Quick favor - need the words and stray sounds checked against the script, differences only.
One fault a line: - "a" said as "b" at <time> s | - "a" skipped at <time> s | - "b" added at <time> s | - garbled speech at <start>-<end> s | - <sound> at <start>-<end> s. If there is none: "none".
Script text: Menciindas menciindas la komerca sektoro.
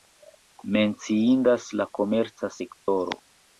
- "menciindas" skipped at 1.7 s
- dropout at 2.8-2.9 s